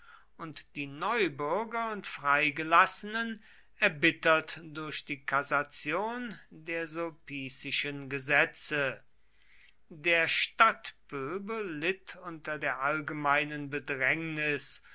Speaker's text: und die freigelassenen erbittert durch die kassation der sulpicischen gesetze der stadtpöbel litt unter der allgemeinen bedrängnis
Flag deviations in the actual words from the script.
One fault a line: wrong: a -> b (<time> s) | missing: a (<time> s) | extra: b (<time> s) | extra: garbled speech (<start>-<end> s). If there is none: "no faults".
extra: neubürger und (0.9 s)